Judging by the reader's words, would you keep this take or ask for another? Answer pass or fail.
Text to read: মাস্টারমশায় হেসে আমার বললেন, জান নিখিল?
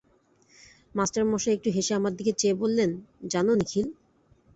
fail